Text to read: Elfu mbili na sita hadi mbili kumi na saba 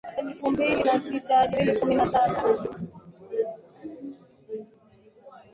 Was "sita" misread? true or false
false